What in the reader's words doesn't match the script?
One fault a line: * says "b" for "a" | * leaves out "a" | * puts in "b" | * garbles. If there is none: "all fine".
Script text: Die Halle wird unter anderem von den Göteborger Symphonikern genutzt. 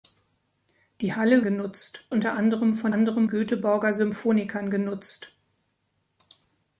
* says "genutzt" for "wird"
* says "anderem" for "den"